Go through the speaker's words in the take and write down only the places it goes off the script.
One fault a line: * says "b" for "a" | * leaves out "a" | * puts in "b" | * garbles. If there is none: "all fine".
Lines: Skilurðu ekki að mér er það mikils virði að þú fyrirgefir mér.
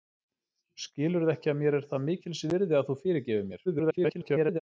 * garbles